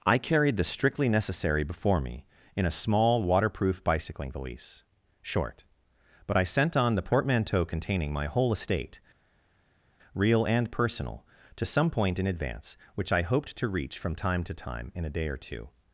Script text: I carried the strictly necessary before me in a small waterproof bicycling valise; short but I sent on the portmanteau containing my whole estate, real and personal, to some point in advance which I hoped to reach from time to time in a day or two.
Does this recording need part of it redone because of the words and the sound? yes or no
no